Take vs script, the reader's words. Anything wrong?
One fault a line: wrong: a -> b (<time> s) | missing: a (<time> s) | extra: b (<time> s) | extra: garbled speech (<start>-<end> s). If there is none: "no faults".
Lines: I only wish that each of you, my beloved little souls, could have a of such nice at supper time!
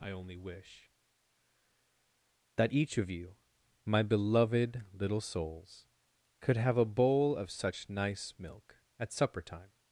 extra: bowl (6.8 s)
extra: milk (8.4 s)